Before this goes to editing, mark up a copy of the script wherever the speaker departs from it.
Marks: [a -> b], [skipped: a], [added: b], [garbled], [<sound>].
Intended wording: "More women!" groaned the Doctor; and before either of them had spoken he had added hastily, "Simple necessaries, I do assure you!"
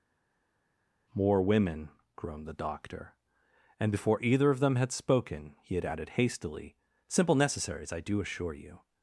"More women!" groaned the Doctor; and before either of them had spoken he had added hastily, "Simple necessaries, I do assure you!"